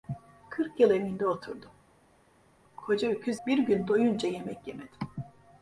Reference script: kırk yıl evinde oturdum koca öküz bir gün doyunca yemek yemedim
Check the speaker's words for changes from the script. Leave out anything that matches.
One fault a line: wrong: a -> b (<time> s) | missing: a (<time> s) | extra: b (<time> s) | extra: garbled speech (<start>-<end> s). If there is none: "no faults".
no faults